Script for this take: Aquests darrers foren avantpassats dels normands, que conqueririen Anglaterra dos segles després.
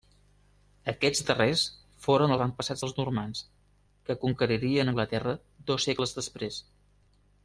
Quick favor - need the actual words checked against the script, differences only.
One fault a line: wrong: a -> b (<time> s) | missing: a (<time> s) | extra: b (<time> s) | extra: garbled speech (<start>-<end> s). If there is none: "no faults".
no faults